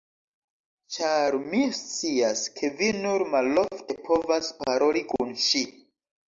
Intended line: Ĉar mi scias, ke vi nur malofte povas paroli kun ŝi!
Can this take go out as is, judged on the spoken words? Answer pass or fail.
pass